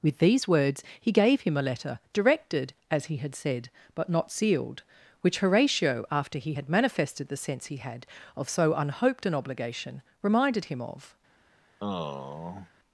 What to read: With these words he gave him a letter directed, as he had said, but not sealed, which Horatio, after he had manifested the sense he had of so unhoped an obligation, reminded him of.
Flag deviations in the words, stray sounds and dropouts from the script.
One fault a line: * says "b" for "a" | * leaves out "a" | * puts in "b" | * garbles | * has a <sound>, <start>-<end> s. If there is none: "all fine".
* has a sigh, 11.8-12.7 s